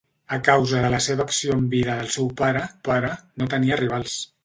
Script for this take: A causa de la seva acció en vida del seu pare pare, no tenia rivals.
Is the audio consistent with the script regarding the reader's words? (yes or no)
yes